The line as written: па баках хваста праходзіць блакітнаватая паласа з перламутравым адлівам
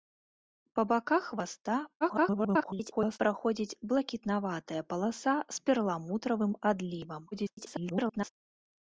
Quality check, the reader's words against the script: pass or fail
fail